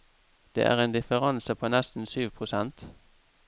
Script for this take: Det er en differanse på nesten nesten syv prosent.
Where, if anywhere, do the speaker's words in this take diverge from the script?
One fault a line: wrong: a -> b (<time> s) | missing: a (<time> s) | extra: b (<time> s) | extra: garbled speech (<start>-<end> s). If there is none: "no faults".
missing: nesten (2.0 s)